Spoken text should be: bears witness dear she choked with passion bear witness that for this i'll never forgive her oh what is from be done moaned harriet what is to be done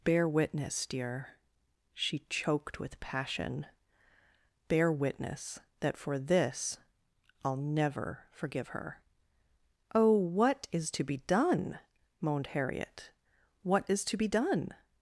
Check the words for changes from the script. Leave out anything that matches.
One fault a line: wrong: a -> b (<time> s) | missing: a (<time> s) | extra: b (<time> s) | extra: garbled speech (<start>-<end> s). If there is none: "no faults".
wrong: bears -> bear (0.0 s)
wrong: from -> to (10.9 s)